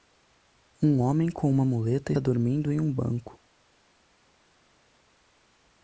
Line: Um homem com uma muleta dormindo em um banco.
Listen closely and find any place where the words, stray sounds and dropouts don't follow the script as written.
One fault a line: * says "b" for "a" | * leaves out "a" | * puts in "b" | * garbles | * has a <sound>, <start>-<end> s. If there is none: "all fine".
all fine